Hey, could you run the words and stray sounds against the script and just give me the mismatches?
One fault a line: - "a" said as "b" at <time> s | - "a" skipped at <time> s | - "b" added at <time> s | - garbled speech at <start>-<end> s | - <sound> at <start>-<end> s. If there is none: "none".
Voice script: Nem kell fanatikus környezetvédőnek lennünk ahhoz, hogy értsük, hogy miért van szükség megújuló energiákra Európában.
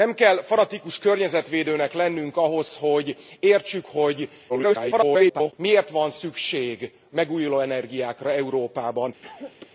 - garbled speech at 4.5-5.5 s
- cough at 9.2-9.7 s